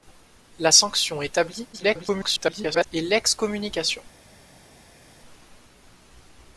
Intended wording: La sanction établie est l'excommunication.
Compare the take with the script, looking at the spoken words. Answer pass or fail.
fail